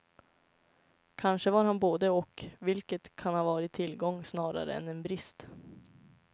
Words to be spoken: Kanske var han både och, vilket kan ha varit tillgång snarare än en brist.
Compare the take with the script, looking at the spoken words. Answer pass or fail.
pass